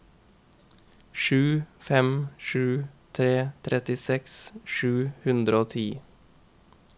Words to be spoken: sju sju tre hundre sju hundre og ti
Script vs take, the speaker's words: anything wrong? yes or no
yes